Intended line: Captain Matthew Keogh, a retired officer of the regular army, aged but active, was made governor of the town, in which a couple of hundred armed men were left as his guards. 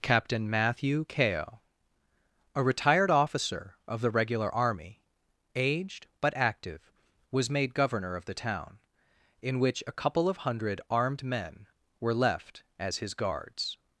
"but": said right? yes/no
yes